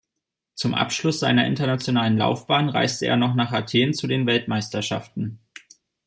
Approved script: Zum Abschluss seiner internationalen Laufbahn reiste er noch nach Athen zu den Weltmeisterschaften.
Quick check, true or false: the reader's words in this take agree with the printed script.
true